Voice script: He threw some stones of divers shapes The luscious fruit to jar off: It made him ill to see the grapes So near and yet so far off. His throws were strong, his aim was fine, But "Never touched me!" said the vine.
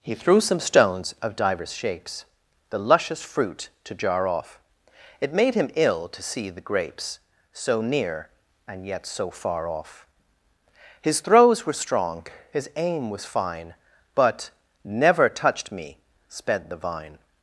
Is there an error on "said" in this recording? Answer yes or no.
yes